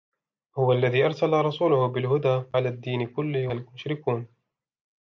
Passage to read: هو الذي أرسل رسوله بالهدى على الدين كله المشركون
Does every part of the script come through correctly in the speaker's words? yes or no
yes